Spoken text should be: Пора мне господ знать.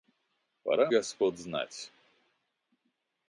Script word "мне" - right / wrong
wrong